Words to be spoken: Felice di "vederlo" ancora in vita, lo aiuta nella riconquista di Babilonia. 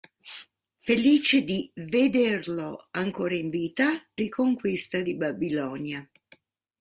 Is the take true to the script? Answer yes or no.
no